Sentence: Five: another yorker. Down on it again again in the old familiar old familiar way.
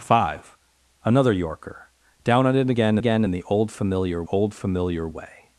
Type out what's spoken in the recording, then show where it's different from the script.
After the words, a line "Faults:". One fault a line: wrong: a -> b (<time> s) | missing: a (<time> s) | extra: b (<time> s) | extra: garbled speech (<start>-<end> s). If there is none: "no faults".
Five: another yorker. Down on it again again in the old familiar old familiar way.
Faults:
no faults